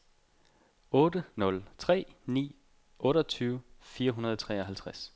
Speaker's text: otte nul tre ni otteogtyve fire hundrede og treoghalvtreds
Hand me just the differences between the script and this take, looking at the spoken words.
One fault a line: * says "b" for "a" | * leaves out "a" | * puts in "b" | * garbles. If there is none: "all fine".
all fine